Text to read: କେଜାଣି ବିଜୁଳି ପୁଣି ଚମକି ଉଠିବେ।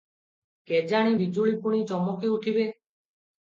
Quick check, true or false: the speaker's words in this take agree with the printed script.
true